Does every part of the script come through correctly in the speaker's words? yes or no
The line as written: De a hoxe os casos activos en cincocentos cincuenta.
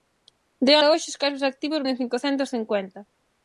yes